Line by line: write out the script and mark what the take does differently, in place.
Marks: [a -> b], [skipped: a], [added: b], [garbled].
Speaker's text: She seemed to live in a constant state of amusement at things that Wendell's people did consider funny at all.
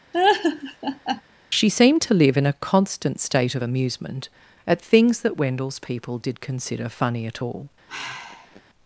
She seemed to live in a constant state of amusement at things that Wendell's people did consider funny at all.